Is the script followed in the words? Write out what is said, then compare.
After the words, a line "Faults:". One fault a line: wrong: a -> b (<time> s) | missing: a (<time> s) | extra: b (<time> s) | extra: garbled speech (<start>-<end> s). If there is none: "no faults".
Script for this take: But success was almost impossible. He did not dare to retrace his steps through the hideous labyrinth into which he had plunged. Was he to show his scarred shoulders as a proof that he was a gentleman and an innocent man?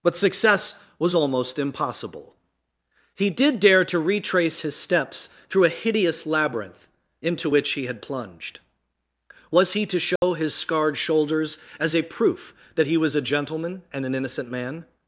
But success was almost impossible. He did dare to retrace his steps through a hideous labyrinth into which he had plunged. Was he to show his scarred shoulders as a proof that he was a gentleman and an innocent man?
Faults:
missing: not (3.6 s)
wrong: the -> a (5.7 s)